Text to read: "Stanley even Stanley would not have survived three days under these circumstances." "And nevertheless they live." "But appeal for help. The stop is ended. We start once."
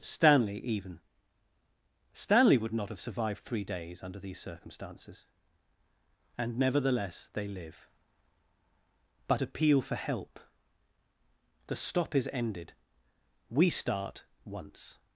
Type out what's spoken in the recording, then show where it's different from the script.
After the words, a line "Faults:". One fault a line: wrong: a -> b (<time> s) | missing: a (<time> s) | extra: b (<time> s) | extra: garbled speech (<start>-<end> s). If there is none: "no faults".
"Stanley even Stanley would not have survived three days under these circumstances." "And nevertheless they live." "But appeal for help. The stop is ended. We start once."
Faults:
no faults